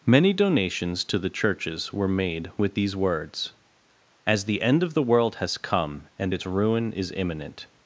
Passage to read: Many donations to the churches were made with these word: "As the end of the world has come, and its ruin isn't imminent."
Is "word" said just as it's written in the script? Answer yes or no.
no